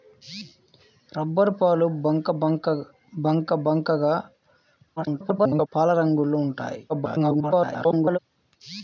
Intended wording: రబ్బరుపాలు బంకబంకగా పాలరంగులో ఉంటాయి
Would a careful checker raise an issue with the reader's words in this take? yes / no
yes